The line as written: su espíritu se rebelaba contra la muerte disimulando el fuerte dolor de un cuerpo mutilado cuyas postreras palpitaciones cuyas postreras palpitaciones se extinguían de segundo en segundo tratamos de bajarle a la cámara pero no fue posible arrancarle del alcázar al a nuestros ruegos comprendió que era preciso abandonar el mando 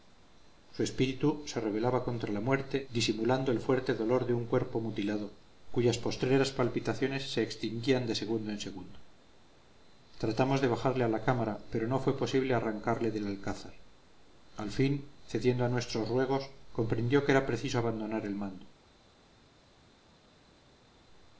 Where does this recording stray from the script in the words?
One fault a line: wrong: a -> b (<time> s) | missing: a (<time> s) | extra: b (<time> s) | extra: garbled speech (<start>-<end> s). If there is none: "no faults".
missing: cuyas postreras palpitaciones (7.3 s)
extra: fin cediendo (14.7 s)